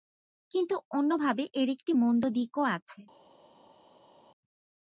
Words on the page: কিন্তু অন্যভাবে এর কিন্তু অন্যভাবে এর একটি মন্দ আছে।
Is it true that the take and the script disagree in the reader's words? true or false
true